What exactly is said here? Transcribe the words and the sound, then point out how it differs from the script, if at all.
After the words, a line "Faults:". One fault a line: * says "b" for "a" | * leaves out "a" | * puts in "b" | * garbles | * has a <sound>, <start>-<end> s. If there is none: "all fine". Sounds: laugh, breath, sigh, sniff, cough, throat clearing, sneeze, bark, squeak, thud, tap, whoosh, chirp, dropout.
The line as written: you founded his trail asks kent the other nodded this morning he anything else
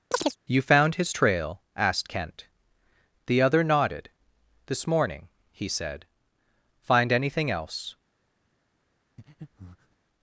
you found his trail asked kent the other nodded this morning he said find anything else
Faults:
* has a chirp, 0.1-0.4 s
* says "found" for "founded"
* says "asked" for "asks"
* puts in "said find"
* has a breath, 9.2-10.0 s